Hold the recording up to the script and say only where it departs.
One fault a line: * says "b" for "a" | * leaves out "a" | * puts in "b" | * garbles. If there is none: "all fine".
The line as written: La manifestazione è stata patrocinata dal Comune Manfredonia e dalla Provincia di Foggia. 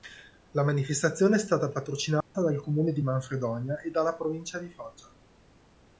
* puts in "di"